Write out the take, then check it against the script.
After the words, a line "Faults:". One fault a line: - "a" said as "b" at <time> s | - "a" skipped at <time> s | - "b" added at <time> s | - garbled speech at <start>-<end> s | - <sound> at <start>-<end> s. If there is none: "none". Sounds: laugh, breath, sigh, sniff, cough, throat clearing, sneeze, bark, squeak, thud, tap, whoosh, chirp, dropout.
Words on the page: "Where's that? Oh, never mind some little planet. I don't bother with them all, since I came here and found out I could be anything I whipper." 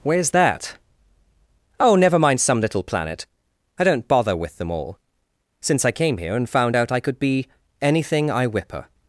"Where's that? Oh, never mind some little planet. I don't bother with them all, since I came here and found out I could be anything I whipper."
Faults:
none